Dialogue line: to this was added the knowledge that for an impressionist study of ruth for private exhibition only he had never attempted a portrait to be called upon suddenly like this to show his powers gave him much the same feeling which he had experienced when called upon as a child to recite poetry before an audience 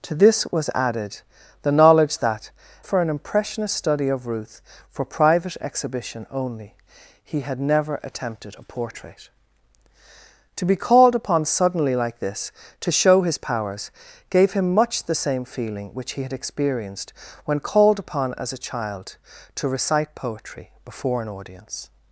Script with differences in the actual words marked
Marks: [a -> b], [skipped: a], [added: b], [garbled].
to this was added the knowledge that for an impressionist study of ruth for private exhibition only he had never attempted a portrait to be called upon suddenly like this to show his powers gave him much the same feeling which he had experienced when called upon as a child to recite poetry before an audience